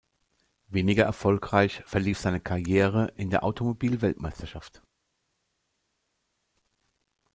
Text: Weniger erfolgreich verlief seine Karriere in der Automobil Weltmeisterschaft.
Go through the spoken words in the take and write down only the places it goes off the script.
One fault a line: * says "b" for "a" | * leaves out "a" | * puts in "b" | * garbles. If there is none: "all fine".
all fine